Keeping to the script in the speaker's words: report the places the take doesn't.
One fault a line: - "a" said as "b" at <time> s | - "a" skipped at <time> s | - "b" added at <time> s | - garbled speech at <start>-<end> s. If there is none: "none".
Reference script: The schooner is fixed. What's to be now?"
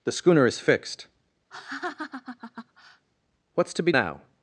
none